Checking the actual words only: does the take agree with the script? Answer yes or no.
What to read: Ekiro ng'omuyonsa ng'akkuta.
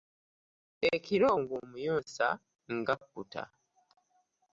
yes